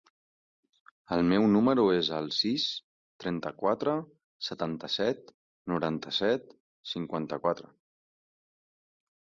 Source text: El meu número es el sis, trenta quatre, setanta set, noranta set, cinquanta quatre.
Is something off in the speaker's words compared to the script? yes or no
no